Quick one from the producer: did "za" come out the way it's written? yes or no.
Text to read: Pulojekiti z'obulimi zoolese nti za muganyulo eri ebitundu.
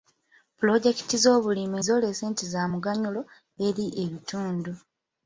yes